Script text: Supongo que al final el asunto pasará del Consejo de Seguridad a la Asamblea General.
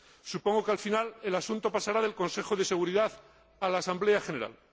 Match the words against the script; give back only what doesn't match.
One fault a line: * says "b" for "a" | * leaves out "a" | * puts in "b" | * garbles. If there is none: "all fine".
all fine